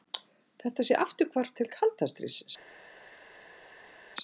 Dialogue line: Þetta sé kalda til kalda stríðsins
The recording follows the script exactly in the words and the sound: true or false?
false